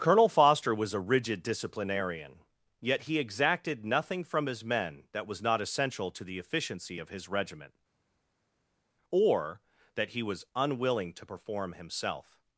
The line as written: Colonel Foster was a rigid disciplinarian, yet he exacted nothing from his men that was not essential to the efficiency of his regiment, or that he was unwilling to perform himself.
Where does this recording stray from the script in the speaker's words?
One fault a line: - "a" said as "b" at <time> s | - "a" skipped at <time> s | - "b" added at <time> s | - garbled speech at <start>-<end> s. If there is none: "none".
none